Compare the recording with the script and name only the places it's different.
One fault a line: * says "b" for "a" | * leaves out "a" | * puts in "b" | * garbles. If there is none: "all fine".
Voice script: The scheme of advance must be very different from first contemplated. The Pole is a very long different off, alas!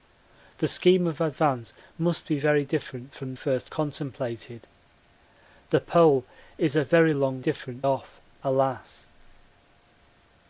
all fine